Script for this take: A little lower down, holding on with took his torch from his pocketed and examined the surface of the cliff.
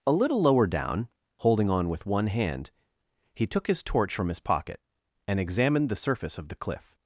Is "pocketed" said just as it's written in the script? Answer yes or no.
no